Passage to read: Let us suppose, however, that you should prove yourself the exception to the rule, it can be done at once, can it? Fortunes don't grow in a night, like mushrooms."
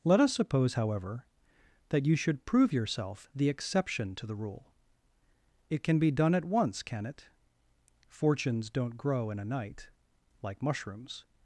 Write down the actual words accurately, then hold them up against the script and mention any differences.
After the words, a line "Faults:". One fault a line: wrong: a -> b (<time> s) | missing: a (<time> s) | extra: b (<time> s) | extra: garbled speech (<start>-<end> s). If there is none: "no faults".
Let us suppose, however, that you should prove yourself the exception to the rule, it can be done at once, can it? Fortunes don't grow in a night, like mushrooms."
Faults:
no faults